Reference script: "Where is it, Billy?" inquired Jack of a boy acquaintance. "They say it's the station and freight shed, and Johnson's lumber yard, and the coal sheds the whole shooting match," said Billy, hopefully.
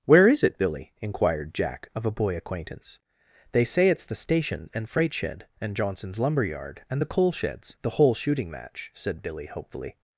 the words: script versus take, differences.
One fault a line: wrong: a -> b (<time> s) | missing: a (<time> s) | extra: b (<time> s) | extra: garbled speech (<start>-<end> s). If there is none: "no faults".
no faults